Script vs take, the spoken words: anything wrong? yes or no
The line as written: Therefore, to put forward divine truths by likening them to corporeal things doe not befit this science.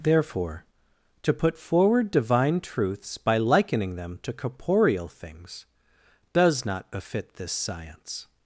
yes